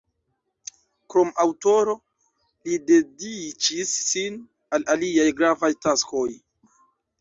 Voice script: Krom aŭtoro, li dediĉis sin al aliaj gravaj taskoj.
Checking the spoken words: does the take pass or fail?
pass